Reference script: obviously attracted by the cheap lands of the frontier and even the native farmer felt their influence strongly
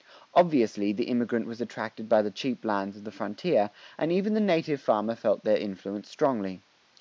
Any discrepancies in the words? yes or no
yes